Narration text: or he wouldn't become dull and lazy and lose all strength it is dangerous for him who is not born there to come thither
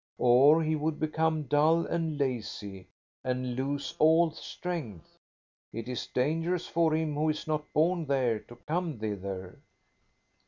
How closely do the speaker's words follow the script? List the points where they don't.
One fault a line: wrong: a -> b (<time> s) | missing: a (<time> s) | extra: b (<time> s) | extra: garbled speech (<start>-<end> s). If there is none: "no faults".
wrong: wouldn't -> would (0.8 s)